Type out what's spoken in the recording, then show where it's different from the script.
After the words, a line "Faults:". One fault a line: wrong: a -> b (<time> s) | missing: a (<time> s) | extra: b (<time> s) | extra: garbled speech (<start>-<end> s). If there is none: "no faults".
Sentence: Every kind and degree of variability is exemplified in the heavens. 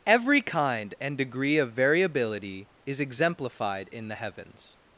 Every kind and degree of variability is exemplified in the heavens.
Faults:
no faults